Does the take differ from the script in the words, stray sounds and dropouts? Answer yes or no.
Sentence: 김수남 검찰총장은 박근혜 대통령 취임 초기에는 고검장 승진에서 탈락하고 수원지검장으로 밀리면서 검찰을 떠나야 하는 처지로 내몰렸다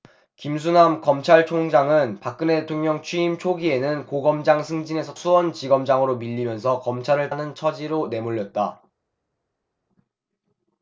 yes